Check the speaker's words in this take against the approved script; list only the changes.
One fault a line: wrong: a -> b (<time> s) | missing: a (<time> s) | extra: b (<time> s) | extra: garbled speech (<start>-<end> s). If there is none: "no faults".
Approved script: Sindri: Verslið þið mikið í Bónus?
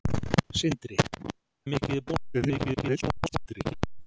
missing: Verslið (1.0 s)
extra: garbled speech (2.3-3.7 s)